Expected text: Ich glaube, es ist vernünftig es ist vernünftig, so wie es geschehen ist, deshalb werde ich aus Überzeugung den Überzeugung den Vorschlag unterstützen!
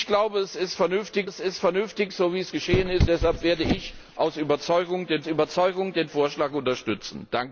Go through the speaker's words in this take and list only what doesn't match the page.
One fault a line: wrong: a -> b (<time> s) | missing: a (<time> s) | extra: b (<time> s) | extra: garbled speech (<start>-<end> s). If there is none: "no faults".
no faults